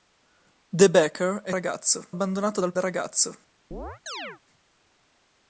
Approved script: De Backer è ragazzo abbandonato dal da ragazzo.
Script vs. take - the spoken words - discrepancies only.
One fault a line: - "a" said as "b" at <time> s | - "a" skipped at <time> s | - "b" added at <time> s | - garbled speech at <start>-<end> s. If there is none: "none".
none